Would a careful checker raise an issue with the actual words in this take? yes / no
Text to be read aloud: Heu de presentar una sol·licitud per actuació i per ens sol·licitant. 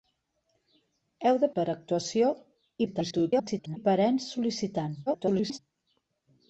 yes